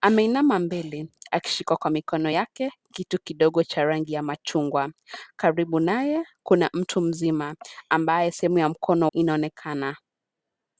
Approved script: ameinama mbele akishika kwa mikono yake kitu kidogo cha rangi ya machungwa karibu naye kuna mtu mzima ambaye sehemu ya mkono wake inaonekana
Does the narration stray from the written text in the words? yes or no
yes